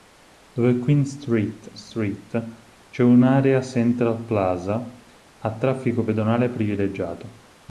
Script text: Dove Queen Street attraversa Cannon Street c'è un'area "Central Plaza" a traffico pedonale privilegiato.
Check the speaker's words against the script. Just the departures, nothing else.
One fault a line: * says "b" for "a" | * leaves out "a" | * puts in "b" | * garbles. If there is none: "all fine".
* leaves out "attraversa Cannon"